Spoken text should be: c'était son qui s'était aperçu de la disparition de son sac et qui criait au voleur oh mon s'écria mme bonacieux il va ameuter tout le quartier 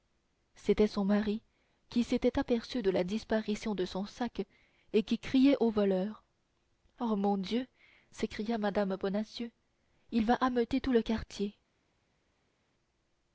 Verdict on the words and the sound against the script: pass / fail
fail